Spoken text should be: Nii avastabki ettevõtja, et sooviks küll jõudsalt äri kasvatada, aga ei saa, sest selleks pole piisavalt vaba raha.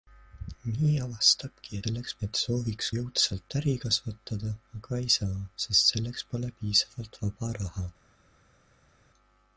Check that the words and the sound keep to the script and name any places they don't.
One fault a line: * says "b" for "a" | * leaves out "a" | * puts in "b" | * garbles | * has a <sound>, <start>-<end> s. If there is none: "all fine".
* says "selleks" for "ettevõtja"
* leaves out "küll"